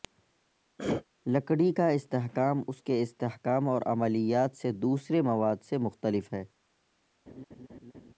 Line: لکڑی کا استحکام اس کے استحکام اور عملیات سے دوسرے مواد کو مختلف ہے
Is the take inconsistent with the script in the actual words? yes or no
yes